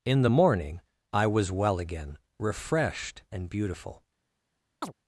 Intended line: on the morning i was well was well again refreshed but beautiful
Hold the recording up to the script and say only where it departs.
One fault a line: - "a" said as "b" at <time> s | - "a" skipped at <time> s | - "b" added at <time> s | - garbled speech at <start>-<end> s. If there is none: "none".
- "on" said as "in" at 0.0 s
- "was well" skipped at 1.8 s
- "but" said as "and" at 3.3 s